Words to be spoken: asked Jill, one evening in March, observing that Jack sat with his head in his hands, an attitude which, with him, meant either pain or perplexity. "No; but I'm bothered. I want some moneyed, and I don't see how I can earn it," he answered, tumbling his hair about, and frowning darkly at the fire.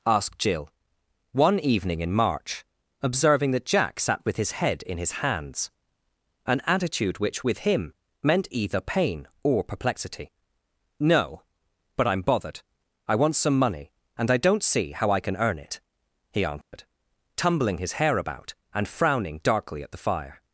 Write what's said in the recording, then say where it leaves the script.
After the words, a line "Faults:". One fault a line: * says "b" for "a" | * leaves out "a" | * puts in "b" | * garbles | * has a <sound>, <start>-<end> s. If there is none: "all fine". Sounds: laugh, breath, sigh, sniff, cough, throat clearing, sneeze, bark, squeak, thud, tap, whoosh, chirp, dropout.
asked Jill, one evening in March, observing that Jack sat with his head in his hands, an attitude which, with him, meant either pain or perplexity. "No; but I'm bothered. I want some money, and I don't see how I can earn it," he answered, tumbling his hair about, and frowning darkly at the fire.
Faults:
* says "money" for "moneyed"
* has a dropout, 16.6-16.7 s